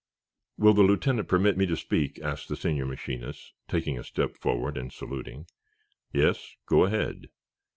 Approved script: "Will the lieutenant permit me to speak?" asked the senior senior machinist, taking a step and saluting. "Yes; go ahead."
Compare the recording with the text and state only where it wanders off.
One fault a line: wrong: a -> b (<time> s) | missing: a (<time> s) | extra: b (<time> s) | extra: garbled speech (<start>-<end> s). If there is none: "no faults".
missing: senior (2.9 s)
extra: forward (4.4 s)